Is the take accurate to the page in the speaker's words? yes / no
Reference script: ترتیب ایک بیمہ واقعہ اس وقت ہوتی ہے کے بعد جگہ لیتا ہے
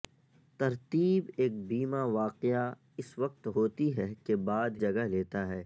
yes